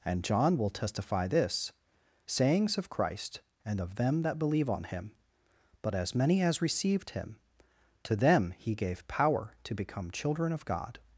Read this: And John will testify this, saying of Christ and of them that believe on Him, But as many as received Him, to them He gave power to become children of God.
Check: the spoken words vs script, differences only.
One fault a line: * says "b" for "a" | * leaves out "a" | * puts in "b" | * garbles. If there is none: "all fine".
* says "sayings" for "saying"